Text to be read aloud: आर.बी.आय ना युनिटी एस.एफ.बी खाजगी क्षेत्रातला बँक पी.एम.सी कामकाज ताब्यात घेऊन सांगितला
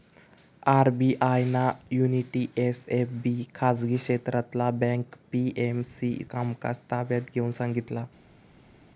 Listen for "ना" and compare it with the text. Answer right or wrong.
right